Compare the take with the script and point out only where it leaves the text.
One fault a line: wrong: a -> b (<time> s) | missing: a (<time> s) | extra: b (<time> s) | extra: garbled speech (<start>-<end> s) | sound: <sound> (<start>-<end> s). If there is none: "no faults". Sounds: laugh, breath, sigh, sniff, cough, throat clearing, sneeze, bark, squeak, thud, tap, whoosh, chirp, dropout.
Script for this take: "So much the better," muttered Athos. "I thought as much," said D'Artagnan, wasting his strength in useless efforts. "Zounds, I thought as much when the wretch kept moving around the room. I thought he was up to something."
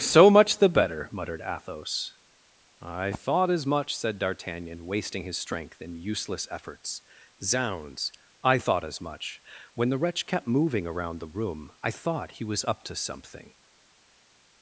no faults